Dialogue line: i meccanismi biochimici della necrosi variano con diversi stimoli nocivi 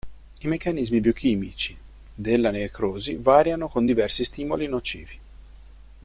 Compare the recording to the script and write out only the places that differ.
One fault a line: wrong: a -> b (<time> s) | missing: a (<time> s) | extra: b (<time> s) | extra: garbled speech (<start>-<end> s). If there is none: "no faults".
no faults